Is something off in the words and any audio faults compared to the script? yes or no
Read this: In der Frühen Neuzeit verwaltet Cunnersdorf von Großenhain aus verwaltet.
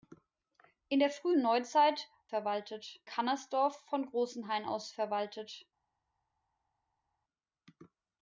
no